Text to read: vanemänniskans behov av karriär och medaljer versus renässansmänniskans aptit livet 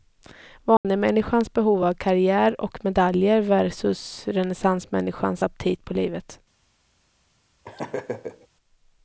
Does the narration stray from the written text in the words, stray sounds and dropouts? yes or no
yes